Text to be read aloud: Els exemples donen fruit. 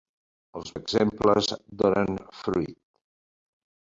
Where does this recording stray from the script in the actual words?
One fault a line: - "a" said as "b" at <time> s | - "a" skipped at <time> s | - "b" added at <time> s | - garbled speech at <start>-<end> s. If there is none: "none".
none